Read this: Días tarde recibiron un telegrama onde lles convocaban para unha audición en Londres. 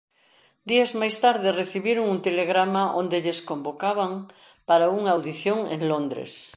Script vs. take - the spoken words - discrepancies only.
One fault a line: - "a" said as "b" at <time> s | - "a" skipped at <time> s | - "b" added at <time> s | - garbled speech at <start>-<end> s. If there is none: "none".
- "máis" added at 0.9 s